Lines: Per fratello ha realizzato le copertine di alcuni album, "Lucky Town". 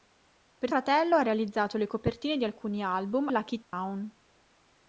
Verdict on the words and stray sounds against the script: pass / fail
fail